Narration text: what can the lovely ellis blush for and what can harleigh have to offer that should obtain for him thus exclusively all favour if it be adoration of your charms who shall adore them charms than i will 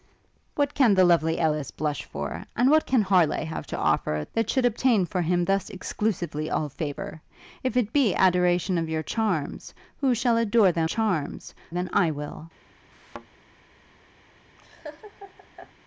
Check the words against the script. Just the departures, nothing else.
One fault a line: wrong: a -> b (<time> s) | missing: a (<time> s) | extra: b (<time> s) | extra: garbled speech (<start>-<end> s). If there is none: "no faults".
no faults